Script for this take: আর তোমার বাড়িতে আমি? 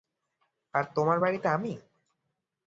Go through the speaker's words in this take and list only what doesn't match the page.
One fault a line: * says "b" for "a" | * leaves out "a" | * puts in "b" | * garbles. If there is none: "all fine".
all fine